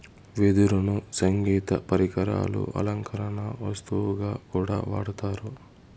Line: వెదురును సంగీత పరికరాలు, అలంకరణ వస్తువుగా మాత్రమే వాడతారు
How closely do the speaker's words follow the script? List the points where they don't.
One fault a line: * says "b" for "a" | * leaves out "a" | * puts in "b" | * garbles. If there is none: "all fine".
* says "కూడా" for "మాత్రమే"